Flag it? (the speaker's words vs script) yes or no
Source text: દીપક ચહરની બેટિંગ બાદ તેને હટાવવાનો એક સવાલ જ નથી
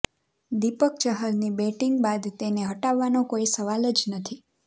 yes